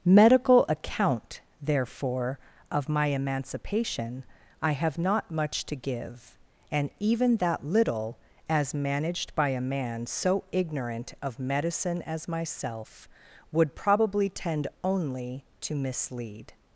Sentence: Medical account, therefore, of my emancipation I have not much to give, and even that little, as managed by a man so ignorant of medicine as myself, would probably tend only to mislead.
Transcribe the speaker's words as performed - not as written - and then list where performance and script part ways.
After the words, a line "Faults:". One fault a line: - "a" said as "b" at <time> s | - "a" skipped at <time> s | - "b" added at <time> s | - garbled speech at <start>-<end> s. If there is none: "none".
Medical account, therefore, of my emancipation I have not much to give, and even that little, as managed by a man so ignorant of medicine as myself, would probably tend only to mislead.
Faults:
none